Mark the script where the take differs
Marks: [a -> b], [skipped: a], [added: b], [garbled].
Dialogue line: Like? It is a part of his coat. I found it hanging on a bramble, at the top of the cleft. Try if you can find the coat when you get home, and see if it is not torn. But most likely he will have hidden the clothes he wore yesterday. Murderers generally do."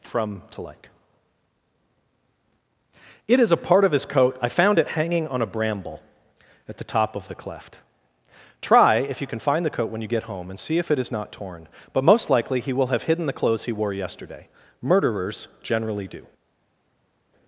[added: from to] Like? It is a part of his coat. I found it hanging on a bramble, at the top of the cleft. Try if you can find the coat when you get home, and see if it is not torn. But most likely he will have hidden the clothes he wore yesterday. Murderers generally do."